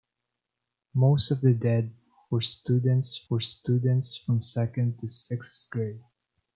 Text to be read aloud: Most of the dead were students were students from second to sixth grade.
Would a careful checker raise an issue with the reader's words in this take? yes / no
no